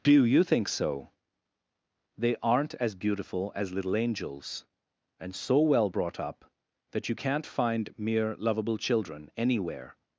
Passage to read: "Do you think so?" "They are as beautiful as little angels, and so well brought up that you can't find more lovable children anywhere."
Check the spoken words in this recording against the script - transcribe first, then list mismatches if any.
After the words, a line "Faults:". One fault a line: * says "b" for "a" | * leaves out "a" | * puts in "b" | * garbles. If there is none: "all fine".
"Do you think so?" "They aren't as beautiful as little angels, and so well brought up that you can't find mere lovable children anywhere."
Faults:
* says "aren't" for "are"
* says "mere" for "more"